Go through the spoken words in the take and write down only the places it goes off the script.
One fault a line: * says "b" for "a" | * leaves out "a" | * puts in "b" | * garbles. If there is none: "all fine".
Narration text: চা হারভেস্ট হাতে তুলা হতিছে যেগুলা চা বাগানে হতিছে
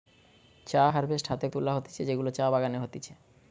all fine